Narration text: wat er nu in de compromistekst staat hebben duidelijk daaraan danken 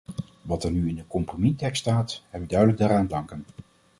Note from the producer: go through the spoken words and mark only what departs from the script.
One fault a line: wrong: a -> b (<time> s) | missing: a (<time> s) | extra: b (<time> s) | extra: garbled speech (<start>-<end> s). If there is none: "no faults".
no faults